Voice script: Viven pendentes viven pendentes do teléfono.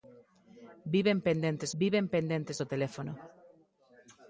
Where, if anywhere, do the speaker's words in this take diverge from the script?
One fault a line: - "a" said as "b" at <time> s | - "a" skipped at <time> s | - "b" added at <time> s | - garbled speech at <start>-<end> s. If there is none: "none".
none